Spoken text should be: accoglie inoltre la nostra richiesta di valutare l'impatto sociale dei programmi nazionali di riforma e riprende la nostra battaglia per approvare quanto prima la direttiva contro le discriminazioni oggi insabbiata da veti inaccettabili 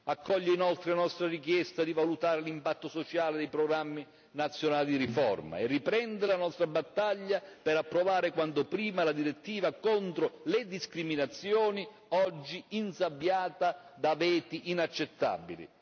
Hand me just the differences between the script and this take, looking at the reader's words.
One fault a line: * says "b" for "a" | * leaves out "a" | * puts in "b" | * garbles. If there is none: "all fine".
all fine